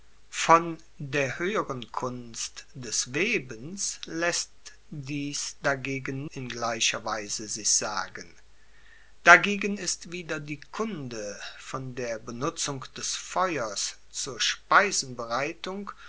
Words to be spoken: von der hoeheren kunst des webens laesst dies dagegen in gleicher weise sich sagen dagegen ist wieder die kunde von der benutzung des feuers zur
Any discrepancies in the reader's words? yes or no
no